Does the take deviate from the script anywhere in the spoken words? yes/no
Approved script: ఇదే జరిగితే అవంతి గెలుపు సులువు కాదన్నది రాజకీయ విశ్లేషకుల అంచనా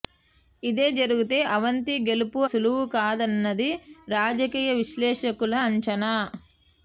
no